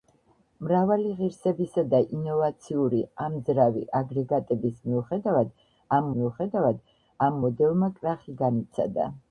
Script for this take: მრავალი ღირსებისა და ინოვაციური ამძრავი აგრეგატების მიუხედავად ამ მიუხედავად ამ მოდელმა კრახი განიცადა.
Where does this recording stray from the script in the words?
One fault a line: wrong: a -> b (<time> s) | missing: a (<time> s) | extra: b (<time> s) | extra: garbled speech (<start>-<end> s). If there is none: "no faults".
no faults